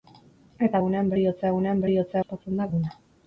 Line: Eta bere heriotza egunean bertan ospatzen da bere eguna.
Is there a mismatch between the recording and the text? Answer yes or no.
yes